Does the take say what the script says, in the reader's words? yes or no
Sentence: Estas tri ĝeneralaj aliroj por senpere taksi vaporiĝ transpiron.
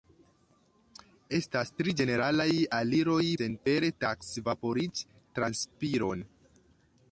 no